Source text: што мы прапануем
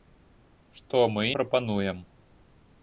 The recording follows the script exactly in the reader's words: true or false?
true